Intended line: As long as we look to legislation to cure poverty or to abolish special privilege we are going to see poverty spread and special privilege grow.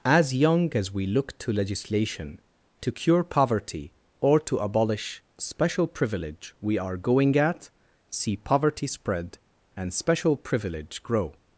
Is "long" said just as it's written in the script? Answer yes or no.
no